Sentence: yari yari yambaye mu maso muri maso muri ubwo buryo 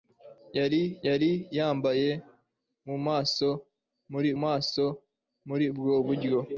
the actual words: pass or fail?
pass